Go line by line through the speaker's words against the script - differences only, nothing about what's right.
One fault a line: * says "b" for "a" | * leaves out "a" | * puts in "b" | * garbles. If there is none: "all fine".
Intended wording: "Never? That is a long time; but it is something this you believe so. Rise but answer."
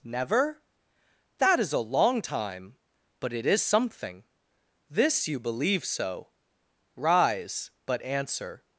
all fine